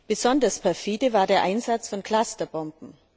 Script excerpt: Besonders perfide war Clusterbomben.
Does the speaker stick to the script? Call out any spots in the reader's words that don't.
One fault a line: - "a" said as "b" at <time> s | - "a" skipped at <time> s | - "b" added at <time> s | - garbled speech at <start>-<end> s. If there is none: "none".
- "der Einsatz von" added at 1.3 s